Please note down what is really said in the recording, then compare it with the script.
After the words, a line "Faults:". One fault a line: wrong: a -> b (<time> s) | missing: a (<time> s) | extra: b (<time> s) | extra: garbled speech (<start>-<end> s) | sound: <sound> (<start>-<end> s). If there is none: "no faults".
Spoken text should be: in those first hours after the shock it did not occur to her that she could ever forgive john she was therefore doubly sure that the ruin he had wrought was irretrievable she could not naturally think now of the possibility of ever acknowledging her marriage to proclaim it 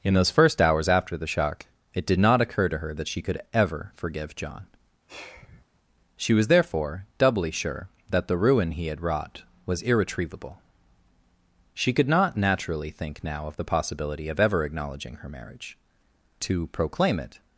in those first hours after the shock it did not occur to her that she could ever forgive john she was therefore doubly sure that the ruin he had wrought was irretrievable she could not naturally think now of the possibility of ever acknowledging her marriage to proclaim it
Faults:
sound: sigh (5.1-5.6 s)